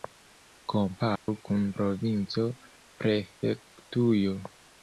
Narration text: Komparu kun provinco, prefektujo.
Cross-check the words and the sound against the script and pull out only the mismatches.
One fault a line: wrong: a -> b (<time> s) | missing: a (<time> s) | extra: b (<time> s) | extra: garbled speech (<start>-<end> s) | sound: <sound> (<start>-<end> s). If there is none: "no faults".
sound: dropout (1.2-1.3 s)